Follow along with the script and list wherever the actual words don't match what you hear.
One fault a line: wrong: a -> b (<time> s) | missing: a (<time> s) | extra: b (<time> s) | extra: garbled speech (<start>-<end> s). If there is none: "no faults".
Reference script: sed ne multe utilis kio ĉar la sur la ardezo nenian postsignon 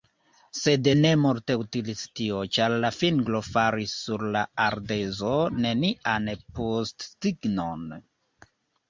wrong: kio -> tio (2.2 s)
extra: fingro faris (3.0 s)